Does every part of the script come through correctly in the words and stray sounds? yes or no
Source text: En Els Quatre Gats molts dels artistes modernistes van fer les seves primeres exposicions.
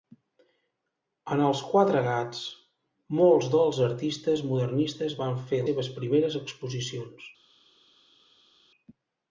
no